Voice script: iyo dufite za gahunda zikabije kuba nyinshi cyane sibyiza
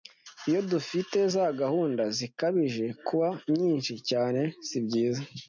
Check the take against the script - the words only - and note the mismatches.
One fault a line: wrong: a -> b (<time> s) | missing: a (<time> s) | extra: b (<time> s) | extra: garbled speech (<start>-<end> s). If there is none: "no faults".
no faults